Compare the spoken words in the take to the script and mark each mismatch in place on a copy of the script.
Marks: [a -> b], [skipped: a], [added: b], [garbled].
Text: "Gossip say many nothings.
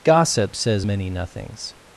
"Gossip [say -> says] many nothings.